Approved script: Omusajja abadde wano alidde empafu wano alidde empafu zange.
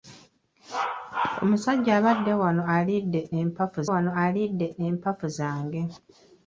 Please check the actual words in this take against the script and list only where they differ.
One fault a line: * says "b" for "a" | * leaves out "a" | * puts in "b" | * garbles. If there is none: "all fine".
all fine